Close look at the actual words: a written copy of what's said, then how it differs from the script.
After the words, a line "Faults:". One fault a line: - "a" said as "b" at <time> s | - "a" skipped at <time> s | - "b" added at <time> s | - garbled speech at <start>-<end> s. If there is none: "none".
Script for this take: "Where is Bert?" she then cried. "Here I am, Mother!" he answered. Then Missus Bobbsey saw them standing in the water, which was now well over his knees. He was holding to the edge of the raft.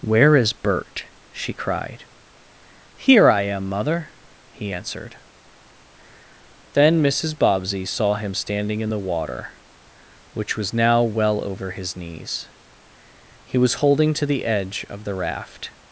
"Where is Bert?" she cried. "Here I am, Mother!" he answered. Then Missus Bobbsey saw him standing in the water, which was now well over his knees. He was holding to the edge of the raft.
Faults:
- "then" skipped at 1.5 s
- "them" said as "him" at 8.1 s